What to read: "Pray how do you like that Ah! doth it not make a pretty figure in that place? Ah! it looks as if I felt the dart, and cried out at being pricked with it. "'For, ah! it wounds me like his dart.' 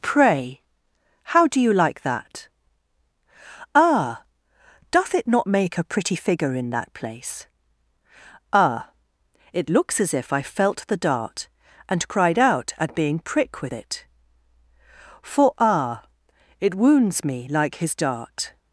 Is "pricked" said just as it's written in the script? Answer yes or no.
no